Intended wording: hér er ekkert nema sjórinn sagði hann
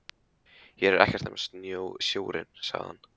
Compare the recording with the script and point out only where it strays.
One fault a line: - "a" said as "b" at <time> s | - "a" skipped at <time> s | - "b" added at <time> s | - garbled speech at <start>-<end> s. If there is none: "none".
none